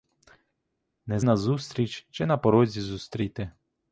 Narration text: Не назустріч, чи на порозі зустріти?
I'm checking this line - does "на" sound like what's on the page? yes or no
yes